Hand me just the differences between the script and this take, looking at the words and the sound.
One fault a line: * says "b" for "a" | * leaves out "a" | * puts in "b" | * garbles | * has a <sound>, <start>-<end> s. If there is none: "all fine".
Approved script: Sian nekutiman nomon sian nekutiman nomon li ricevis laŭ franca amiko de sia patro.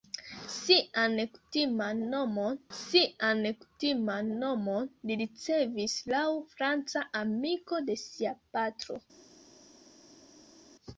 all fine